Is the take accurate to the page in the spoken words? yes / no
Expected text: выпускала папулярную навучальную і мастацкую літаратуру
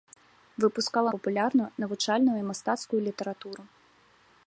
yes